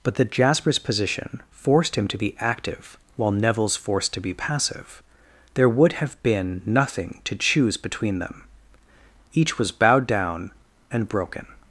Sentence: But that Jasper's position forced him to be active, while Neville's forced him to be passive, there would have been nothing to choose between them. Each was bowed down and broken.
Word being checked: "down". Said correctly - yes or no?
yes